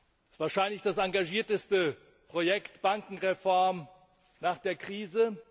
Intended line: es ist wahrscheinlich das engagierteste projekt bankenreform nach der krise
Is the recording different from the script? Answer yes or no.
no